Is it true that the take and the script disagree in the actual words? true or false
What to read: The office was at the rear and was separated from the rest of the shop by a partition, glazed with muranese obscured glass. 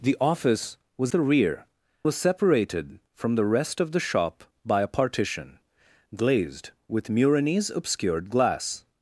true